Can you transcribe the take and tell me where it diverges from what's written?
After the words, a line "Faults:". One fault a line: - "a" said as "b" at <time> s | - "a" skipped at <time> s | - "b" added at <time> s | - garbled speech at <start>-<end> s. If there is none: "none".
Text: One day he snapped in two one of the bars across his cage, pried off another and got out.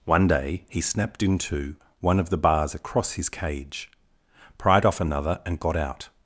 One day he snapped in two one of the bars across his cage, pried off another and got out.
Faults:
none